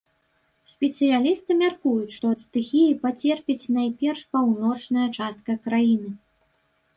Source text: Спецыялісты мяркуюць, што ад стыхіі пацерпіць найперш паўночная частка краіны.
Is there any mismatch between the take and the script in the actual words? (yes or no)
no